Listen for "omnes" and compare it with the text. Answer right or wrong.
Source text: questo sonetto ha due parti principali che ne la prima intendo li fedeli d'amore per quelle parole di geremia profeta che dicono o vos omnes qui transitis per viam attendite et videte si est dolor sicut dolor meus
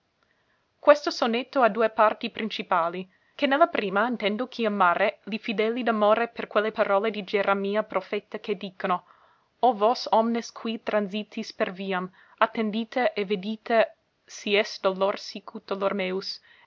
right